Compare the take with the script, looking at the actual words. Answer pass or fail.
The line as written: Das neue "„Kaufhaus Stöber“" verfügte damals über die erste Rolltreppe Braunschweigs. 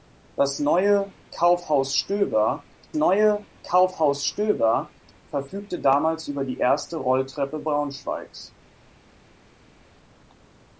fail